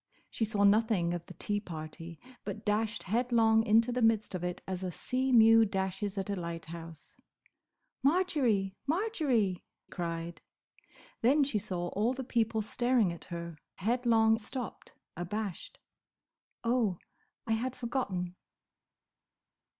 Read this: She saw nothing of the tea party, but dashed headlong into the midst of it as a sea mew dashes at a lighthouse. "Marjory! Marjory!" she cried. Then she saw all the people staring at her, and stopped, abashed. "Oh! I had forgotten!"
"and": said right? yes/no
no